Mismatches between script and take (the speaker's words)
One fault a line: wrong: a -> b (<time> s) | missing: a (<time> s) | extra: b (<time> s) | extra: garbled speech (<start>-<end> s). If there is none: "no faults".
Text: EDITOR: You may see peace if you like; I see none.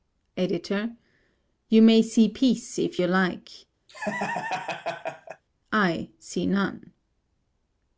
no faults